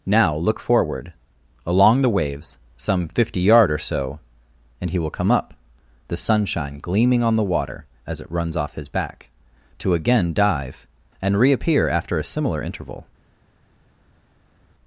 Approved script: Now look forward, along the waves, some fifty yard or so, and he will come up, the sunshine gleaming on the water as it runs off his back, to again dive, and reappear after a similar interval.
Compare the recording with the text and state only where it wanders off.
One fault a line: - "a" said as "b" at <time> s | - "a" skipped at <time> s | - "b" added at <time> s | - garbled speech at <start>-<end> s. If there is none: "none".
none